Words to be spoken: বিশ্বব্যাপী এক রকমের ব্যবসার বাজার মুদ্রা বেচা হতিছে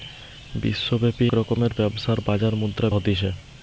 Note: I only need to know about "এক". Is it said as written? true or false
false